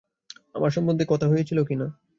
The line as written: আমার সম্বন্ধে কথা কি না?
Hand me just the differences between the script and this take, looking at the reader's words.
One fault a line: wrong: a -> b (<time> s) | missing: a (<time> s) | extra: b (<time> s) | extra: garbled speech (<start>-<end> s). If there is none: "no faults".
extra: হয়েছিল (1.3 s)